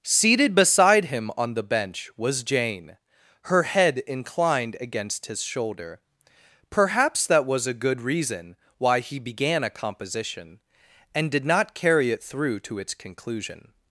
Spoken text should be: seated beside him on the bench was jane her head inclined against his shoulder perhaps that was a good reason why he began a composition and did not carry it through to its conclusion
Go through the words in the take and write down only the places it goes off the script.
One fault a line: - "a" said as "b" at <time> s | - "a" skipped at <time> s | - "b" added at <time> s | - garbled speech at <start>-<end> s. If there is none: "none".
none